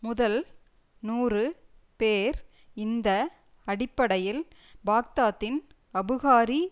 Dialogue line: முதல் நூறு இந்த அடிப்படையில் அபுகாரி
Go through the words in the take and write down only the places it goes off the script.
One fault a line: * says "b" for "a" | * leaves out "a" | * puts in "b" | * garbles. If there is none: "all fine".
* puts in "பேர்"
* puts in "பாக்தாத்தின்"